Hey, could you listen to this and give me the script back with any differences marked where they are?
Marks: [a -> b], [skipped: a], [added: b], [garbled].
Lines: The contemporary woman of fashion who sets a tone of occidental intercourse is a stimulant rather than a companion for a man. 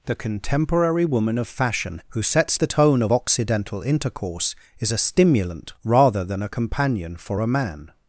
The contemporary woman of fashion who sets [a -> the] tone of occidental intercourse is a stimulant rather than a companion for a man.